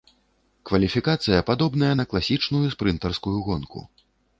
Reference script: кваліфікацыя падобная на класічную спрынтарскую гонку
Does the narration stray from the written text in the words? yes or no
no